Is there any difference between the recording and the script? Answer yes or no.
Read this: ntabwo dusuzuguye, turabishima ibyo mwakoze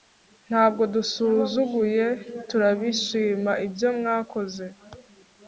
no